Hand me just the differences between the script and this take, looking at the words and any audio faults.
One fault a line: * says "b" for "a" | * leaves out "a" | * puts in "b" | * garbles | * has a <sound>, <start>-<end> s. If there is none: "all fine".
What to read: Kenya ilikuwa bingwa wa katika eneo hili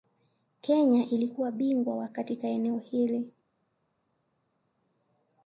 all fine